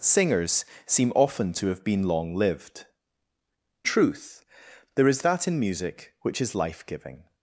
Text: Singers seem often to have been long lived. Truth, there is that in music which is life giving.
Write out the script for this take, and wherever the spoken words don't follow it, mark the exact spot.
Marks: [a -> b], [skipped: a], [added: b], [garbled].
Singers seem often to have been long lived. Truth, there is that in music which is life giving.